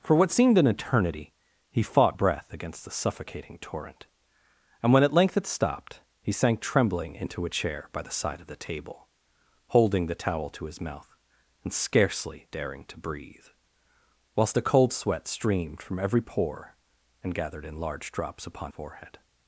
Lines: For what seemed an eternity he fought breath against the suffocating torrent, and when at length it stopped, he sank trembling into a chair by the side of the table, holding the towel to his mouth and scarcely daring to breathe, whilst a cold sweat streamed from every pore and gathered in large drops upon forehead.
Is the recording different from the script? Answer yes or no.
no